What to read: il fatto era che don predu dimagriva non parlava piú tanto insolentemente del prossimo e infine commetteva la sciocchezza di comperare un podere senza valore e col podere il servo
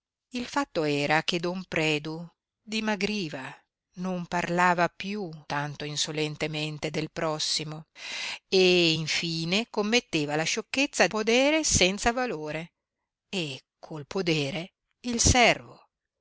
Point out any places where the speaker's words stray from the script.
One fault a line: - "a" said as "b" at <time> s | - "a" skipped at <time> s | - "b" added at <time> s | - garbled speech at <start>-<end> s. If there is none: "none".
- "di comperare un" skipped at 11.1 s